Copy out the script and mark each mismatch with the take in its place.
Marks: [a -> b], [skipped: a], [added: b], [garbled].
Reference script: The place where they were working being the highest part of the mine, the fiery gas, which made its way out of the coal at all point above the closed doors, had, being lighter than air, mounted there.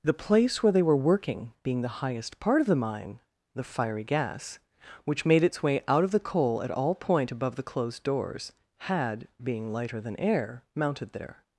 The place where they were working being the highest part of the mine, the fiery gas, which made its way out of the coal at all point above the closed doors, had, being lighter than air, mounted there.